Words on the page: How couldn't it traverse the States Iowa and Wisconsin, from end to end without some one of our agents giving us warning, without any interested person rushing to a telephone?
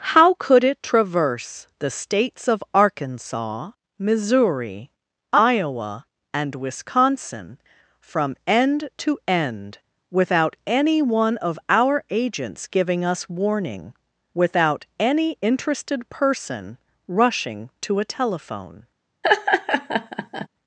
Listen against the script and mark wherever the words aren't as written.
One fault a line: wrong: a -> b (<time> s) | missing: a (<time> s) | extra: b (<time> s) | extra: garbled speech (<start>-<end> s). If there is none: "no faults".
wrong: couldn't -> could (0.3 s)
extra: of Arkansas Missouri (2.5 s)
wrong: some -> any (10.7 s)